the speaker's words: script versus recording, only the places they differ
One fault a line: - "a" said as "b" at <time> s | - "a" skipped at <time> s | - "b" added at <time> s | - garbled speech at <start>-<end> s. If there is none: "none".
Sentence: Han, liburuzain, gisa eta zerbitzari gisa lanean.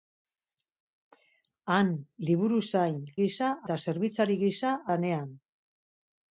none